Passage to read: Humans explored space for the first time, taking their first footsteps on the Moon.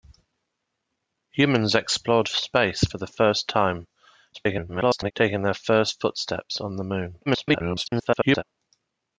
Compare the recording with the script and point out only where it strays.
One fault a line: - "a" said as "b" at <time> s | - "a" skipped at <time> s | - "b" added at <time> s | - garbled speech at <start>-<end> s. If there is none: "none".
- garbled speech at 4.3-5.1 s
- garbled speech at 7.3-8.4 s